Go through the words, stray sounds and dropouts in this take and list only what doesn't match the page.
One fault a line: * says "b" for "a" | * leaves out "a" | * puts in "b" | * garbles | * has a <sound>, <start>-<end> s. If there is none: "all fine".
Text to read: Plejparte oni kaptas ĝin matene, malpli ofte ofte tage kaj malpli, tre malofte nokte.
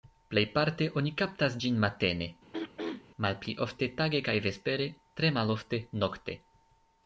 * has a throat clearing, 2.5-3.0 s
* leaves out "ofte"
* says "vespere" for "malpli"